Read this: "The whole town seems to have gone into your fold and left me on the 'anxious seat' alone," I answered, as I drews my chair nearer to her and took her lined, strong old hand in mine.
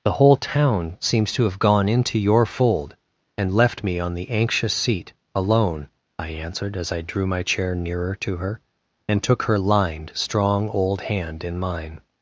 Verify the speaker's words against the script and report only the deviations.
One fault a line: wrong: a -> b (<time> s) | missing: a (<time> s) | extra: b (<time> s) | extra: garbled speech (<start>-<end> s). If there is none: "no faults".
wrong: drews -> drew (7.0 s)